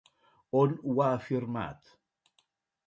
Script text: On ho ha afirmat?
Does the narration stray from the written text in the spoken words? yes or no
no